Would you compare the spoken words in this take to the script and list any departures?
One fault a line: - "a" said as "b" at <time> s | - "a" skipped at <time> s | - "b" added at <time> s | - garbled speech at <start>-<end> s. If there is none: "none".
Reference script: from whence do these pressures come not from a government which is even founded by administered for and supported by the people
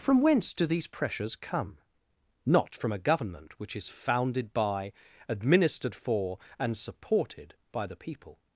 - "even" skipped at 3.9 s